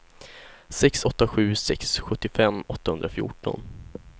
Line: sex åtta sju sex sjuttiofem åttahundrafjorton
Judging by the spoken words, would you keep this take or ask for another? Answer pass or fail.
pass